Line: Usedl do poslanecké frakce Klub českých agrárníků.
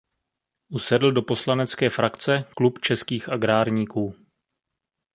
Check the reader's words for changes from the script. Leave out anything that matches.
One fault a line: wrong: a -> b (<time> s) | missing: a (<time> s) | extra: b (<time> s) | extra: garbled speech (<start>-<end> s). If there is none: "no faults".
no faults